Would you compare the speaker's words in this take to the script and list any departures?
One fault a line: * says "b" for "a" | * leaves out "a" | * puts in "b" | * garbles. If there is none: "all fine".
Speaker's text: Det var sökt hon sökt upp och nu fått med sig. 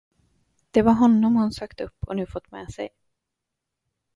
* says "honom" for "sökt"